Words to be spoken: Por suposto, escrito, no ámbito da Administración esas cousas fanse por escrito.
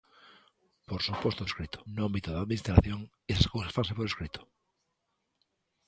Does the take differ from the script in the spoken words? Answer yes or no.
no